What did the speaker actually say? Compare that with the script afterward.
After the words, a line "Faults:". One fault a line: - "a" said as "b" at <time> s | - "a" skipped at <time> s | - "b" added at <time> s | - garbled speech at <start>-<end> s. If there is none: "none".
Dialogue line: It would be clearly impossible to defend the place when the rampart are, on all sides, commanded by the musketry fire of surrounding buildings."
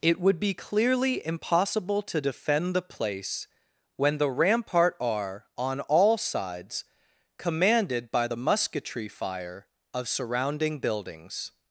It would be clearly impossible to defend the place when the rampart are, on all sides, commanded by the musketry fire of surrounding buildings."
Faults:
none